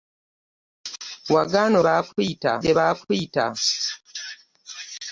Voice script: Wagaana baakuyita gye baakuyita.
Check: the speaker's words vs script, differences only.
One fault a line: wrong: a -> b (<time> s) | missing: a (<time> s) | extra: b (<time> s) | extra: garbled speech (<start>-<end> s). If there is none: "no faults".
no faults